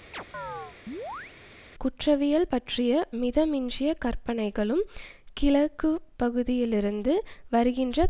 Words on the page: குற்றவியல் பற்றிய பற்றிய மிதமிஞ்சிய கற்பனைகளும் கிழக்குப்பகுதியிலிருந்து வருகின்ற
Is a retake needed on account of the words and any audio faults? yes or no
yes